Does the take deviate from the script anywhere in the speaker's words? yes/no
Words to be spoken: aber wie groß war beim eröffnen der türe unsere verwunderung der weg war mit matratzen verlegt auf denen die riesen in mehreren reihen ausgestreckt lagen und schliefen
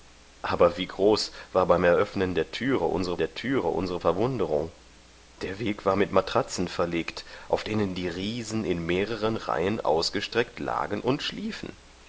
yes